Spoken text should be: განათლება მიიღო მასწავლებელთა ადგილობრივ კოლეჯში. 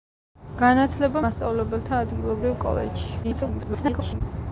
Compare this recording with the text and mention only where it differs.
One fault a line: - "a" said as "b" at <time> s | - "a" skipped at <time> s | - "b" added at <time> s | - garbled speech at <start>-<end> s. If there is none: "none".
- "მიიღო" skipped at 1.2 s
- garbled speech at 3.2-4.2 s